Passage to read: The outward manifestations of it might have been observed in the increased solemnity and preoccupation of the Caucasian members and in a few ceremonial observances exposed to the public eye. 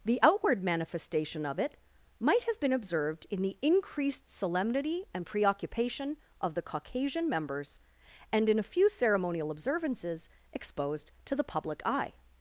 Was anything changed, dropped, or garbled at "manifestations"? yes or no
yes